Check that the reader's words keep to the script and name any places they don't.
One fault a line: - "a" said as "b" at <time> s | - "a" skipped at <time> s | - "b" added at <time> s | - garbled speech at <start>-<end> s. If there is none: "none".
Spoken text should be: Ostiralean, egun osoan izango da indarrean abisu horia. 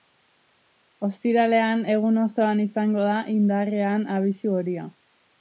none